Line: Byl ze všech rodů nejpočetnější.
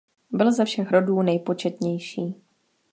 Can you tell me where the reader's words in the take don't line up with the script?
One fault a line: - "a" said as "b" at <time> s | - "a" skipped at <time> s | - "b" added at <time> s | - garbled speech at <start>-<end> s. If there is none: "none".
none